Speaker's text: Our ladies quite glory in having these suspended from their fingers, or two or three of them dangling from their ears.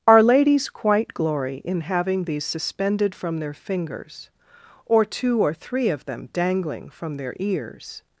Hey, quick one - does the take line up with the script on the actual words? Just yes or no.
yes